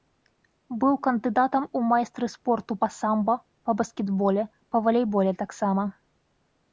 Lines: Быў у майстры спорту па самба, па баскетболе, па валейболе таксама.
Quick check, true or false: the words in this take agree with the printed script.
false